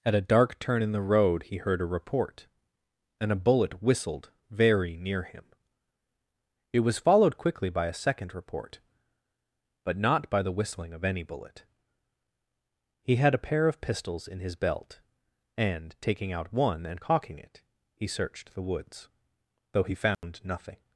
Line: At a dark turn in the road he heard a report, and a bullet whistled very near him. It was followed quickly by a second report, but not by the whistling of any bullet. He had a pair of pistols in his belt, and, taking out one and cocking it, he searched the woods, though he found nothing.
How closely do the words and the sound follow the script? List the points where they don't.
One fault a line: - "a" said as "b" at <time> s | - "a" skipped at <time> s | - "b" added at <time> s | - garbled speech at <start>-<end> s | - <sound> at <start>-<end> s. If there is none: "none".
- dropout at 20.1-20.2 s